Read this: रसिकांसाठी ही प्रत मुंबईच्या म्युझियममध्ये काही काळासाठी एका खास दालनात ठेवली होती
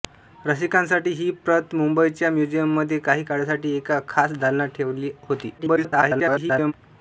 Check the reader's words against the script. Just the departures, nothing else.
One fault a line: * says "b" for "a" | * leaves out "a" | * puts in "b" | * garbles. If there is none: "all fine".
* garbles